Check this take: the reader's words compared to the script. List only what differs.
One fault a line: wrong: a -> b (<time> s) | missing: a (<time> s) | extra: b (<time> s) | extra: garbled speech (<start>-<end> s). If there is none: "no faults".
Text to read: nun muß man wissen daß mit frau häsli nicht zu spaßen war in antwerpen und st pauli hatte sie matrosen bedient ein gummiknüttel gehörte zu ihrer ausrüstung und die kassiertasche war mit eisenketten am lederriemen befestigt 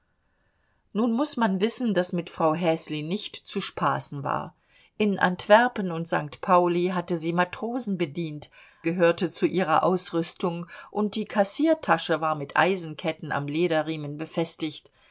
missing: ein gummiknüttel (8.5 s)